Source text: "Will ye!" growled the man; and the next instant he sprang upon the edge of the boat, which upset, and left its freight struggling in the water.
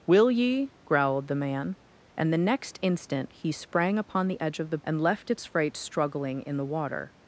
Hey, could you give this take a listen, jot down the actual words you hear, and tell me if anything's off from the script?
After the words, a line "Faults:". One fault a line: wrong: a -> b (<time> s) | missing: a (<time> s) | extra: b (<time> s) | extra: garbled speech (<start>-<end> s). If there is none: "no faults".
"Will ye!" growled the man; and the next instant he sprang upon the edge of the and left its freight struggling in the water.
Faults:
missing: boat which upset (4.8 s)